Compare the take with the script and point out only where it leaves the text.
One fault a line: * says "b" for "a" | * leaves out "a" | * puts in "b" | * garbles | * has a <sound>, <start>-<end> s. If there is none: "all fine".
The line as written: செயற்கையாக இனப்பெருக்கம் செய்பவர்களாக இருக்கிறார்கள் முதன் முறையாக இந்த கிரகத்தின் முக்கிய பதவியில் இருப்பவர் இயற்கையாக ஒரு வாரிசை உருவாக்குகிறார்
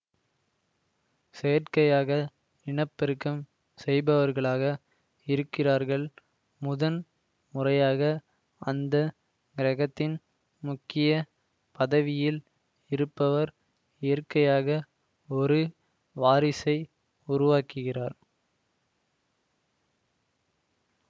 * says "அந்த" for "இந்த"